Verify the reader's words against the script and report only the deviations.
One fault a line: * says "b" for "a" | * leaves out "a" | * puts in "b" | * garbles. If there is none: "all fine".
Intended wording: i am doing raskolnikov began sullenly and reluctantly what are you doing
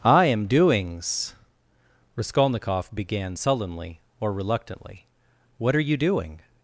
* says "doings" for "doing"
* says "or" for "and"